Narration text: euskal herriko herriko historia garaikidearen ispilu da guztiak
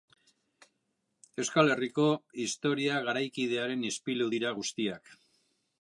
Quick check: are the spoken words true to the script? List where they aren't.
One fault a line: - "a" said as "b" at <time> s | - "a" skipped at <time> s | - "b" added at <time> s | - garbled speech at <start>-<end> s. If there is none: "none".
- "herriko" skipped at 2.1 s
- "da" said as "dira" at 4.4 s